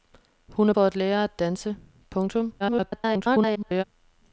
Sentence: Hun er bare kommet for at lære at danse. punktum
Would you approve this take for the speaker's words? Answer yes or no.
no